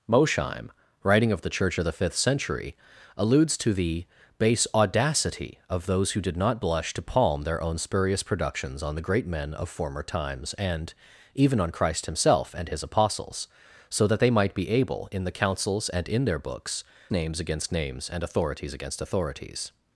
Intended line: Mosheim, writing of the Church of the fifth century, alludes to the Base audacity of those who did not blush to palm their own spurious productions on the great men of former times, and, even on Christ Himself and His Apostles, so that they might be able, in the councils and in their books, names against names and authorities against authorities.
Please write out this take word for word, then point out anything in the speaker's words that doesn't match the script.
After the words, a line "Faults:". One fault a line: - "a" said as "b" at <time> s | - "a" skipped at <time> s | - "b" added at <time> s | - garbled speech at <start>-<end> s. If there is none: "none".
Mosheim, writing of the Church of the fifth century, alludes to the Base audacity of those who did not blush to palm their own spurious productions on the great men of former times, and, even on Christ Himself and His Apostles, so that they might be able, in the councils and in their books, names against names and authorities against authorities.
Faults:
none